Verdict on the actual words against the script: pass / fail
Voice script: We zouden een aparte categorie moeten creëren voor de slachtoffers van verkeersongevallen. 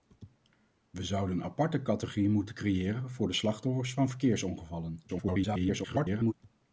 fail